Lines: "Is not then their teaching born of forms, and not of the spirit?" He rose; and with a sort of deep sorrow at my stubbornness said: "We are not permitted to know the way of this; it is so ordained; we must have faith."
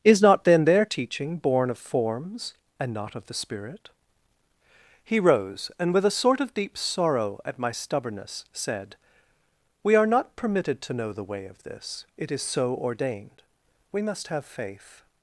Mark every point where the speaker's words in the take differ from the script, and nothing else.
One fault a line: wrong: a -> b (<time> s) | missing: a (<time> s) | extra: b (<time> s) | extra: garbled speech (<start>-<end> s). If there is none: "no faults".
no faults